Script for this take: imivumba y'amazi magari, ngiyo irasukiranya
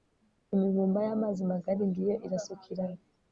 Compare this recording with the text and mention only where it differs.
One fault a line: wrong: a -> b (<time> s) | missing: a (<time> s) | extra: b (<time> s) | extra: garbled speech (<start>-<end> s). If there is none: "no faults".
no faults